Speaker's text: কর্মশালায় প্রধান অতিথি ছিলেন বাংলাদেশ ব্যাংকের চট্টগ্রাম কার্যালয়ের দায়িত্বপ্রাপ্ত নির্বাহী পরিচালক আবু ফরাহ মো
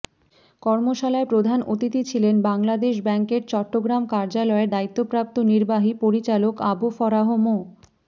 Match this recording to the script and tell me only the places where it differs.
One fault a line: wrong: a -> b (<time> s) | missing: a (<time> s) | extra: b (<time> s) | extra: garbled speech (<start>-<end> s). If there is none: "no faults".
no faults